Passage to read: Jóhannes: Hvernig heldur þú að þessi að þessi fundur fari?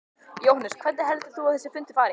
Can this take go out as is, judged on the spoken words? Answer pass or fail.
fail